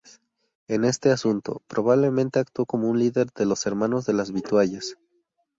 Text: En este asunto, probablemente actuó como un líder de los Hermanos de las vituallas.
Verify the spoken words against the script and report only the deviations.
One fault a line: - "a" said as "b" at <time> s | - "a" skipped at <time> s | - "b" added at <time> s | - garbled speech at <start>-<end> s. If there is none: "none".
none